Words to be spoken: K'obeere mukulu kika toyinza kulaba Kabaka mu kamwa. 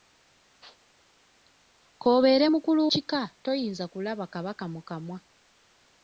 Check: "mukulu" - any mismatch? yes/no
no